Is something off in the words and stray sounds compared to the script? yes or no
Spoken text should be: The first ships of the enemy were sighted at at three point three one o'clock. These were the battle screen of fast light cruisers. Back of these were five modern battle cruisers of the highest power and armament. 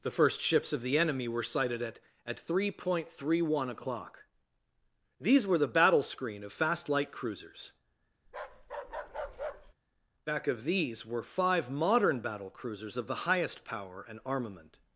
yes